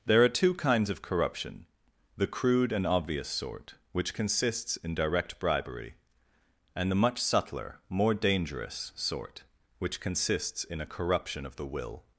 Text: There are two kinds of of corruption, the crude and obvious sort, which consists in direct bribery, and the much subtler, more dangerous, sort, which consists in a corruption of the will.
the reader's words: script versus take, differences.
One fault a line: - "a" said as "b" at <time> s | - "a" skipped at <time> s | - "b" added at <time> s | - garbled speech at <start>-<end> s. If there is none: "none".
- "of" skipped at 1.0 s